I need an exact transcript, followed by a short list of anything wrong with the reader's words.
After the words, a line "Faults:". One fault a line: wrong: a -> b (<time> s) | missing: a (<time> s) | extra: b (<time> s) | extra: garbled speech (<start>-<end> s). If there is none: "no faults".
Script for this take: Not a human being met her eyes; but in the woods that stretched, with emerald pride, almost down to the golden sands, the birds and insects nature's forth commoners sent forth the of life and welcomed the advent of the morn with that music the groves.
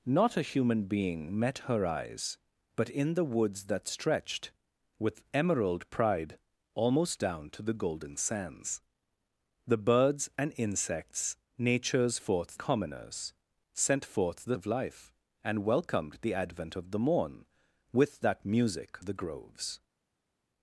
Not a human being met her eyes; but in the woods that stretched, with emerald pride, almost down to the golden sands, the birds and insects nature's forth commoners sent forth the of life and welcomed the advent of the morn with that music the groves.
Faults:
no faults